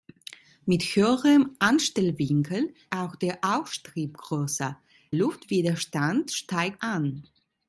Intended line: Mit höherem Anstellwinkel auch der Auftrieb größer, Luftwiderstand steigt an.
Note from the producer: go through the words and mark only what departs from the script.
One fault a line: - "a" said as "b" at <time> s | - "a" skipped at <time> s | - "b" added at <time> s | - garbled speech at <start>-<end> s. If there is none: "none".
none